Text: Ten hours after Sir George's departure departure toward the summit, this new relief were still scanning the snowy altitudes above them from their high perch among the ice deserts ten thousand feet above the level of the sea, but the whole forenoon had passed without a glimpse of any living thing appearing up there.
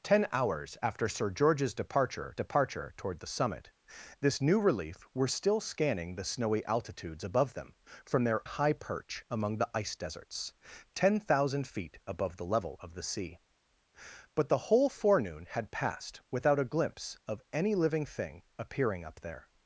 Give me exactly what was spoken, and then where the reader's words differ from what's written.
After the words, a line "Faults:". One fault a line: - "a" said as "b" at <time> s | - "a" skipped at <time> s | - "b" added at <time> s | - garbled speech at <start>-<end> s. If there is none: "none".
Ten hours after Sir George's departure departure toward the summit, this new relief were still scanning the snowy altitudes above them from their high perch among the ice deserts ten thousand feet above the level of the sea, but the whole forenoon had passed without a glimpse of any living thing appearing up there.
Faults:
none